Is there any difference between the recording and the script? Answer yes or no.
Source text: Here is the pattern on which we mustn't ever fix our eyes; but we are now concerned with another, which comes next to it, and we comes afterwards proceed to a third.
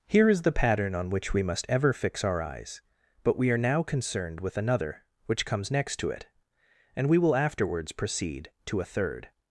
yes